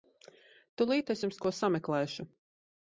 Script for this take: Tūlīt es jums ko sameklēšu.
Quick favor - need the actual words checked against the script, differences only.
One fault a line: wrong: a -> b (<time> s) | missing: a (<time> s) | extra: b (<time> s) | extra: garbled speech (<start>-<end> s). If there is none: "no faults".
no faults